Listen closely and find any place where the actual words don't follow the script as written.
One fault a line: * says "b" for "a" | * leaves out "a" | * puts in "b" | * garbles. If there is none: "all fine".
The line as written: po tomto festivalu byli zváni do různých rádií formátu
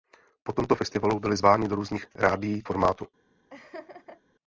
all fine